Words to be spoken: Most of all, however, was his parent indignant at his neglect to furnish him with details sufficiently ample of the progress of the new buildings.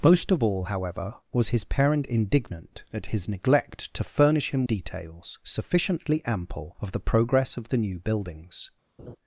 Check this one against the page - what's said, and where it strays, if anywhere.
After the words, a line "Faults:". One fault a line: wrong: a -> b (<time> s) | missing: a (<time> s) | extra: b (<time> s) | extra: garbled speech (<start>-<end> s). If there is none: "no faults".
Most of all, however, was his parent indignant at his neglect to furnish him details sufficiently ample of the progress of the new buildings.
Faults:
missing: with (4.6 s)